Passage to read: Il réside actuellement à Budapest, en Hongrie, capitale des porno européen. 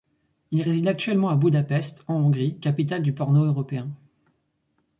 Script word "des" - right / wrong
wrong